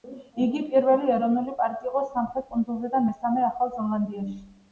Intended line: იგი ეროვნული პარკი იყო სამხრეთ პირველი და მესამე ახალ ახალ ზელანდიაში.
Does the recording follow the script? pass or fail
fail